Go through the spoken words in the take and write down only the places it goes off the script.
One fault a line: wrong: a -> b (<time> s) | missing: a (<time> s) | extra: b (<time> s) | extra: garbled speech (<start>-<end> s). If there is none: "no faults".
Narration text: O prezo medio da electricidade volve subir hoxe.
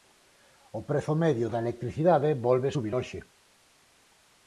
no faults